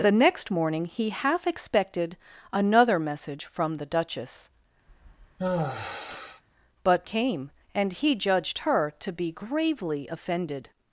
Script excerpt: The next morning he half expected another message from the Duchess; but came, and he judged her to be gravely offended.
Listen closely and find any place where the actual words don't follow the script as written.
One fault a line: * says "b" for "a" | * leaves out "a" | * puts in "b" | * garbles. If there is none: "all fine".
all fine